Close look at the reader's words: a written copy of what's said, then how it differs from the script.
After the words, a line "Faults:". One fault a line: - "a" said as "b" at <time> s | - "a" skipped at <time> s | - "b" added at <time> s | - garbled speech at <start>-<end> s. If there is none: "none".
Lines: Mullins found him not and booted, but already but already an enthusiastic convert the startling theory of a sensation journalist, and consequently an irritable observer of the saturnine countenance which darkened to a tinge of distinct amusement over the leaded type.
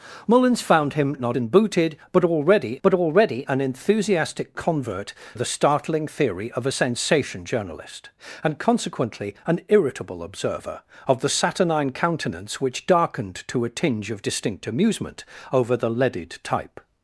Mullins found him not and booted, but already but already an enthusiastic convert the startling theory of a sensation journalist, and consequently an irritable observer of the saturnine countenance which darkened to a tinge of distinct amusement over the leaded type.
Faults:
none